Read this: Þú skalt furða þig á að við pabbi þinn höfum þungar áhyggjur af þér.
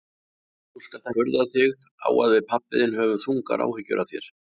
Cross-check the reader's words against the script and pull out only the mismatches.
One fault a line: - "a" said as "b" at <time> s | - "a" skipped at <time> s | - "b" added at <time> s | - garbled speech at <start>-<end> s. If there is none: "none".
none